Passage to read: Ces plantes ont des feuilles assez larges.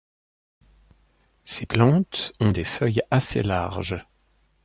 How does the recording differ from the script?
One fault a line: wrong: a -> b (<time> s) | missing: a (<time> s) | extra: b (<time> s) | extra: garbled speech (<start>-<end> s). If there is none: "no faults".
no faults